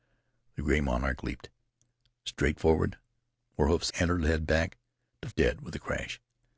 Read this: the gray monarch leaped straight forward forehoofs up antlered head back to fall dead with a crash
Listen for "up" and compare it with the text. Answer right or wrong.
wrong